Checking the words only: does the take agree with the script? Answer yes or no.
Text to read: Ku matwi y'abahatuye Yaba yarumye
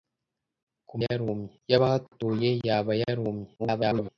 no